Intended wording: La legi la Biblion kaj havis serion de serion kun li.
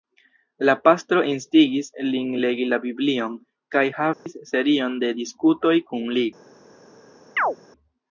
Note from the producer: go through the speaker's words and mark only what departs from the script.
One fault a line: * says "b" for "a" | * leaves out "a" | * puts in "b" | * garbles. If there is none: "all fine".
* puts in "pastro instigis lin"
* says "diskutoj" for "serion"